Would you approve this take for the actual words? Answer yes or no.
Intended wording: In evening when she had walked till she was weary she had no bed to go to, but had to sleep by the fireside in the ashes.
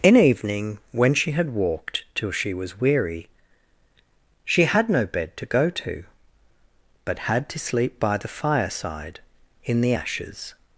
yes